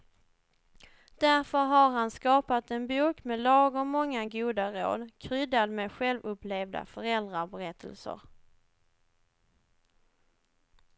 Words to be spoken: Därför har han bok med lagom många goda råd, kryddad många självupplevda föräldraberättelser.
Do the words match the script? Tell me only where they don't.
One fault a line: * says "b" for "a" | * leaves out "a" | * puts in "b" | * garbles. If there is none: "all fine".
* puts in "skapat en"
* says "med" for "många"